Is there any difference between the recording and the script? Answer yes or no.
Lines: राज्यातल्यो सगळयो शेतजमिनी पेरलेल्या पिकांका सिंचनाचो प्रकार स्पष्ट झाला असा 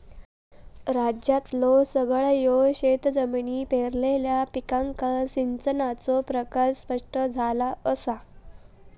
no